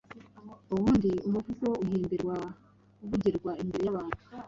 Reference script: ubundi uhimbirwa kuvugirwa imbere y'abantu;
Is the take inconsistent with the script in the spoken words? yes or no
yes